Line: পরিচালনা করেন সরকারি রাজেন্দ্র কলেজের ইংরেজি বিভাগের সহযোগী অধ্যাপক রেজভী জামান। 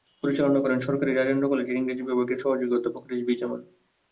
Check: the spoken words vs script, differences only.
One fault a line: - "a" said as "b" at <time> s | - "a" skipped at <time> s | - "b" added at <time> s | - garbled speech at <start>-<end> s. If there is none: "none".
none